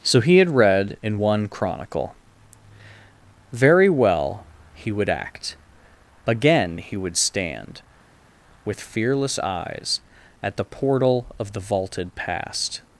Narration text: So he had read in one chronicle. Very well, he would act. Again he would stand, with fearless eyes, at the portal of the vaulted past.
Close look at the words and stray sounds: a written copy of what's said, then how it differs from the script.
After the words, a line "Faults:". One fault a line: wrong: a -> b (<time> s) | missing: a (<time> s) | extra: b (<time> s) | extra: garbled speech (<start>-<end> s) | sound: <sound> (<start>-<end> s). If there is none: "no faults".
So he had read in one chronicle. Very well, he would act. Again he would stand, with fearless eyes, at the portal of the vaulted past.
Faults:
no faults